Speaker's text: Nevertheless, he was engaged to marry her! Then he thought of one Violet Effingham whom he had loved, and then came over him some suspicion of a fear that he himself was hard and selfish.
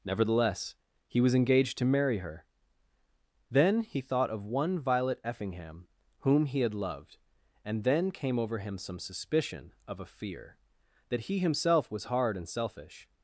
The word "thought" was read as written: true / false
true